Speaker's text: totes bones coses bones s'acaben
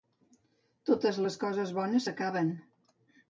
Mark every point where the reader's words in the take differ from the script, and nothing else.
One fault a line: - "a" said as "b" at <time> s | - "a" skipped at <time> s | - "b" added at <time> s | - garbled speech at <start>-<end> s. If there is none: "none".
- "bones" said as "les" at 1.2 s